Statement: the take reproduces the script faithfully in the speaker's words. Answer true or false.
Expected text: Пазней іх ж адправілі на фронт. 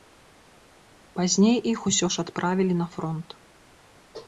false